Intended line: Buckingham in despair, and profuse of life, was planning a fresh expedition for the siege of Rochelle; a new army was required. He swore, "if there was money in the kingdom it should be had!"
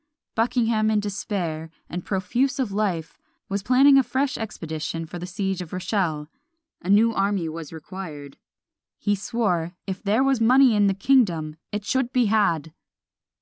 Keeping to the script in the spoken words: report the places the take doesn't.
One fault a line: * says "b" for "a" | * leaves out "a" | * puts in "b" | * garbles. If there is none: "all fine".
all fine